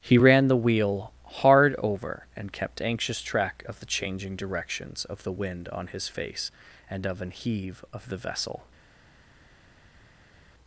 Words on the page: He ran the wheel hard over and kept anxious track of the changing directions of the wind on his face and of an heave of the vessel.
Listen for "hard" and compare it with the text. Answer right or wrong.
right